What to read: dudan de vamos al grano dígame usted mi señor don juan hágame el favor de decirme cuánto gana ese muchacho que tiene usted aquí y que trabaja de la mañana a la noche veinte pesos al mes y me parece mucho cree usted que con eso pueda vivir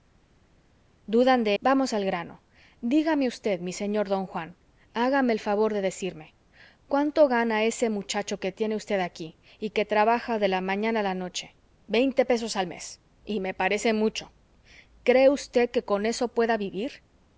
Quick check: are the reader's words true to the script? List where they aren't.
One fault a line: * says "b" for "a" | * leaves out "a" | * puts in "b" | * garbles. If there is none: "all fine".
all fine